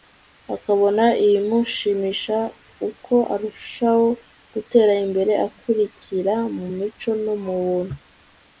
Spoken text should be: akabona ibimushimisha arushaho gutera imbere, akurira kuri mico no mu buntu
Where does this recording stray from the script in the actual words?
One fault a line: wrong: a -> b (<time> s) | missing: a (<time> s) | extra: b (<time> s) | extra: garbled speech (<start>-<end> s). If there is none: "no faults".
extra: uko (2.9 s)
wrong: kuri -> mu (6.6 s)